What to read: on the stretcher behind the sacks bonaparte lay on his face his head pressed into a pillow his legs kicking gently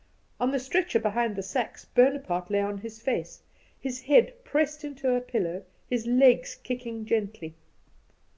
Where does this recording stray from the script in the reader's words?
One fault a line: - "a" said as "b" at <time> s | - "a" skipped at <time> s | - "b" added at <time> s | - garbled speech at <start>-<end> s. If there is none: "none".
none